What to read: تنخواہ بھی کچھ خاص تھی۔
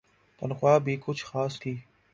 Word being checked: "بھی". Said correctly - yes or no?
yes